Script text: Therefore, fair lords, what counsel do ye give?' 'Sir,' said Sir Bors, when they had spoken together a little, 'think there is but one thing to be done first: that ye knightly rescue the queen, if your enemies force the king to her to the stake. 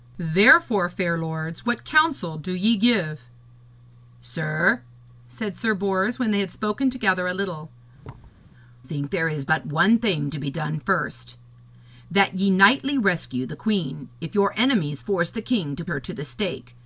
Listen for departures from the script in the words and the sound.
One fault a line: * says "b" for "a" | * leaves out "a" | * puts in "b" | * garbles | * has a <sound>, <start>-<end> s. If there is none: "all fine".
* has a thud, 8.0-8.4 s